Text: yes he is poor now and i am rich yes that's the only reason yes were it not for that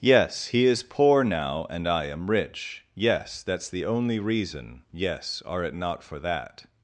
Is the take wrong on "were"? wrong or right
wrong